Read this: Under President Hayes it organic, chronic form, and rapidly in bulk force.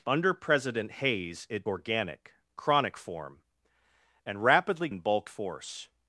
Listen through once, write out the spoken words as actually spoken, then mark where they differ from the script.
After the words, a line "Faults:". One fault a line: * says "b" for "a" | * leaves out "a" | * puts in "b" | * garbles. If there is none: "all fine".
Under President Hayes it organic, chronic form, and rapidly in bulk force.
Faults:
all fine